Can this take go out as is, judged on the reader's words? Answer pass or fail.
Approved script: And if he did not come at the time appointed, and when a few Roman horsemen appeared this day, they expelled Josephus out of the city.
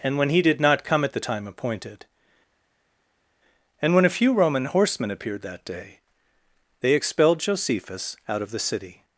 fail